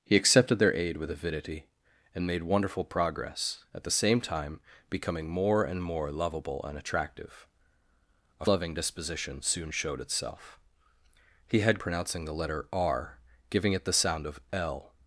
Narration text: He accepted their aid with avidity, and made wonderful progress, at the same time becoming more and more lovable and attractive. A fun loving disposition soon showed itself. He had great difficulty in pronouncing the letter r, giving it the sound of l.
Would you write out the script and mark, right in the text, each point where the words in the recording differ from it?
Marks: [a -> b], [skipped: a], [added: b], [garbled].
He accepted their aid with avidity, and made wonderful progress, at the same time becoming more and more lovable and attractive. A [skipped: fun] loving disposition soon showed itself. He had [skipped: great difficulty in] pronouncing the letter r, giving it the sound of l.